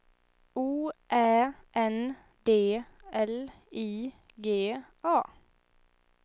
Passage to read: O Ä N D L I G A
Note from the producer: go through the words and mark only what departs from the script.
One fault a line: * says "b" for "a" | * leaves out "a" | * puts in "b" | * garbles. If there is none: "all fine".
all fine